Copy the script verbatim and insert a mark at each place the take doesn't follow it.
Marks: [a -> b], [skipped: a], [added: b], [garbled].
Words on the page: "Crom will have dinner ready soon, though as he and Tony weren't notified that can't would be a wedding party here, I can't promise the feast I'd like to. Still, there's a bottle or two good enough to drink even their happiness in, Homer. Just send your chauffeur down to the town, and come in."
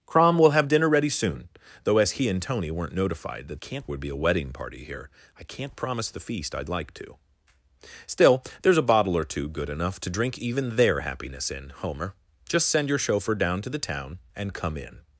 "Crom will have dinner ready soon, though as he and Tony weren't notified that can't would be a wedding party here, I can't promise the feast I'd like to. Still, there's a bottle or two good enough to drink even their happiness in, Homer. Just send your chauffeur down to the town, and come in."